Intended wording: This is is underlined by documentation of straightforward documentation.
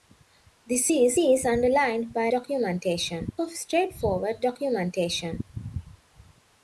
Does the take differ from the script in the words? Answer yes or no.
no